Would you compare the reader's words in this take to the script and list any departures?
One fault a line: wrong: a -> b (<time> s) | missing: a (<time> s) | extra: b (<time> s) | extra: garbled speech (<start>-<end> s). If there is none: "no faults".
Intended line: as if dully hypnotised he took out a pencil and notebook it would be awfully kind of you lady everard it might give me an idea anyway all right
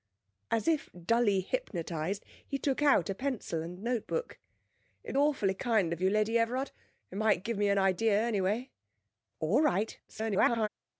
missing: be (5.2 s)
extra: garbled speech (10.1-10.7 s)